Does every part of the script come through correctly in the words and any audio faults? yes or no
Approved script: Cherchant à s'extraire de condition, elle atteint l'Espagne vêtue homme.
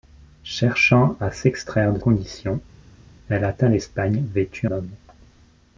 yes